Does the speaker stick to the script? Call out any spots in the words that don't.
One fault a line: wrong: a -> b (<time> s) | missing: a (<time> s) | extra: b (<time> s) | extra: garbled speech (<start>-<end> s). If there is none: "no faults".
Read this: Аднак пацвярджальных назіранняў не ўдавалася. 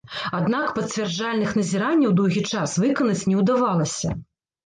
extra: доўгі час выканаць (2.2 s)